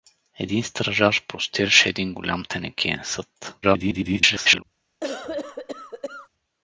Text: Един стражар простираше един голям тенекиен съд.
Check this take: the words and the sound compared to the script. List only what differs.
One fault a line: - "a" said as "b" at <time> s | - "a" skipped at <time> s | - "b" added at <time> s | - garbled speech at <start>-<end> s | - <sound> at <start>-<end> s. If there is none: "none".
- garbled speech at 3.6-4.6 s
- cough at 5.0-6.3 s